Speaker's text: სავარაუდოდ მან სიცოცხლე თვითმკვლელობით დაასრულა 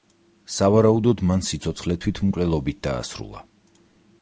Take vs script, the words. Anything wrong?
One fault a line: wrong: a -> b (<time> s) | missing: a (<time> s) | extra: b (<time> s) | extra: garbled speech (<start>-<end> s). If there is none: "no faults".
no faults